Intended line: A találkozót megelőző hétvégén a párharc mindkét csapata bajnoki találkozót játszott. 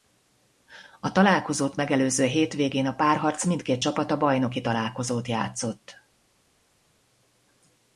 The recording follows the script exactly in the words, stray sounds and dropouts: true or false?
true